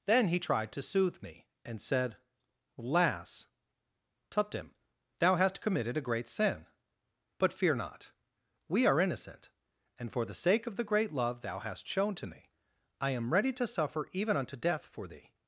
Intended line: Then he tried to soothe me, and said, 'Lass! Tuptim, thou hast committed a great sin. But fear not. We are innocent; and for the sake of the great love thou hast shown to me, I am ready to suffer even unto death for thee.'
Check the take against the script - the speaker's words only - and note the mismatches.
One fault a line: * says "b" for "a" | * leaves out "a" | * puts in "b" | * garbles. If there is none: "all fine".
all fine